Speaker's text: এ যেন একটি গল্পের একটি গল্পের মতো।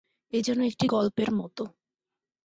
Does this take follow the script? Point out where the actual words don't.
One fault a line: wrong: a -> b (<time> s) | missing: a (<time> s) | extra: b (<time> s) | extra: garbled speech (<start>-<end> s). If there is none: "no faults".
missing: একটি গল্পের (1.3 s)